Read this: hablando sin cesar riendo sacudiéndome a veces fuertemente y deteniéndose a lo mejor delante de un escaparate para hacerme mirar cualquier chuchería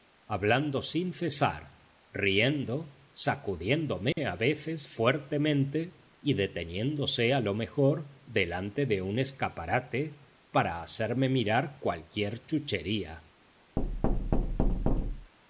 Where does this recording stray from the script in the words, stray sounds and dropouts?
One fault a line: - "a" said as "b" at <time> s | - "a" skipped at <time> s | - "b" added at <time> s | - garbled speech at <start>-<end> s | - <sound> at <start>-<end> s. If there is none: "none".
- dropout at 4.1-4.2 s
- thud at 13.8-15.3 s